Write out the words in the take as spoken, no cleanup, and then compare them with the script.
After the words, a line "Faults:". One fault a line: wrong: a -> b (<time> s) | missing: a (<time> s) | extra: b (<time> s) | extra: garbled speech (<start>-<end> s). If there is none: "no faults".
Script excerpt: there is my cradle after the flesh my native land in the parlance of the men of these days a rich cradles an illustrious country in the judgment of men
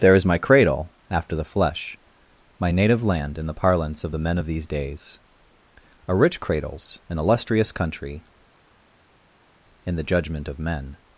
there is my cradle after the flesh my native land in the parlance of the men of these days a rich cradles an illustrious country in the judgment of men
Faults:
no faults